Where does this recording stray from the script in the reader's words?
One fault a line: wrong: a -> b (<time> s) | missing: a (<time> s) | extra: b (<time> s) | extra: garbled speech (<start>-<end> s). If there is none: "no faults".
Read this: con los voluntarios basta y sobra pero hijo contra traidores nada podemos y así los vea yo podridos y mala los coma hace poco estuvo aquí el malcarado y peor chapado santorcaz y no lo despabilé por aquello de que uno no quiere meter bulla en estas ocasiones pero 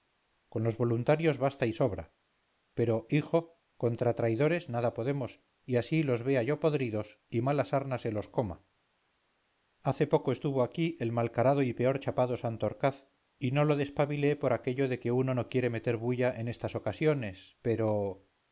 extra: sarna se (7.7 s)